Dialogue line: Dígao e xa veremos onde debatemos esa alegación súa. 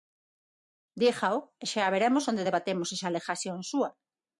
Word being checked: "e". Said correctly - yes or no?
yes